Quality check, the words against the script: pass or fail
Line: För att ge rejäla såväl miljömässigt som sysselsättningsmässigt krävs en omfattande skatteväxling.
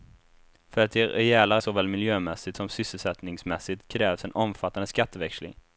pass